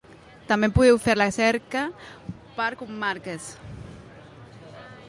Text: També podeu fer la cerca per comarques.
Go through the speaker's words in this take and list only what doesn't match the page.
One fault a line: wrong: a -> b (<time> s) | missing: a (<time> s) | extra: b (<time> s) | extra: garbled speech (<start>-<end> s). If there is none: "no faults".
no faults